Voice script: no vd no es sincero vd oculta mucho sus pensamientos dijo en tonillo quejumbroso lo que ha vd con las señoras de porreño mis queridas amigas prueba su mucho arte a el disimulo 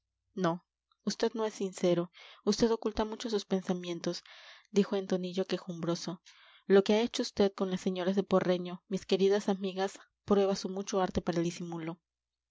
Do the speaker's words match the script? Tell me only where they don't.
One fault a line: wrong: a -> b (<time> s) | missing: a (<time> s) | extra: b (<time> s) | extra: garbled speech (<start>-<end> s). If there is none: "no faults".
extra: hecho (7.0 s)
wrong: a -> para (11.2 s)